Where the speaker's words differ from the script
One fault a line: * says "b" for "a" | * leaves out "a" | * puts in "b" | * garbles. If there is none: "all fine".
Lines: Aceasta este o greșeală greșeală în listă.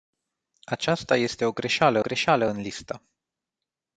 all fine